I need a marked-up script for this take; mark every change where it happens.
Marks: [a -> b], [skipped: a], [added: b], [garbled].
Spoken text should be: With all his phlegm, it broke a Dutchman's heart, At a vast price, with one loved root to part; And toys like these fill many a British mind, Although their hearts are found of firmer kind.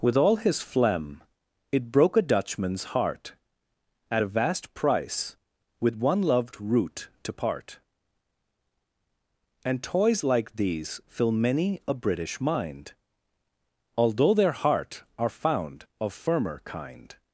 With all his phlegm, it broke a Dutchman's heart, At a vast price, with one loved root to part; And toys like these fill many a British mind, Although their [hearts -> heart] are found of firmer kind.